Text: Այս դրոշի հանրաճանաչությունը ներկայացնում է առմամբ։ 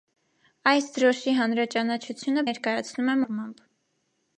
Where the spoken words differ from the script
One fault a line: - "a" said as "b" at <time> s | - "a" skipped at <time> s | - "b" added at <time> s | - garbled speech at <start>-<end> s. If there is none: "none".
none